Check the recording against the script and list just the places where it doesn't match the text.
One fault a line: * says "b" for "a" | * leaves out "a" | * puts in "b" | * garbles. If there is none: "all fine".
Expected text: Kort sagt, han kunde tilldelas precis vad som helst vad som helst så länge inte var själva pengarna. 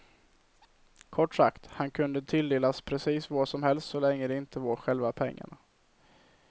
* leaves out "vad som helst"
* puts in "det"